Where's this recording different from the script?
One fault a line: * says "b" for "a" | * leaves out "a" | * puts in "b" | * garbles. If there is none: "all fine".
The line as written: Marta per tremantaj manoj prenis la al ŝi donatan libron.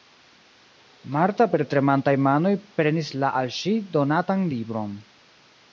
all fine